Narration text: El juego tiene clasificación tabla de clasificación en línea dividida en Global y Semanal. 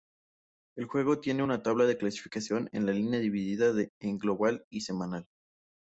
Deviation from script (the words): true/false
true